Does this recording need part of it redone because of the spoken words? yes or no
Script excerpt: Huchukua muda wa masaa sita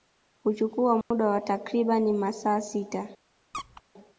yes